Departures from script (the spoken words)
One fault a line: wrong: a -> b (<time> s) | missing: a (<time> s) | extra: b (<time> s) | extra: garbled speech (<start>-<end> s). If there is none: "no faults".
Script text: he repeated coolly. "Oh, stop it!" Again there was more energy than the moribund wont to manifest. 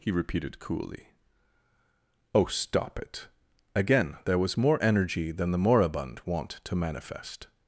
no faults